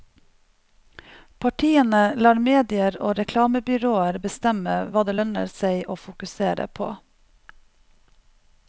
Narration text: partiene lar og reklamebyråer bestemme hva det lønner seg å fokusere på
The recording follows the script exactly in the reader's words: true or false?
false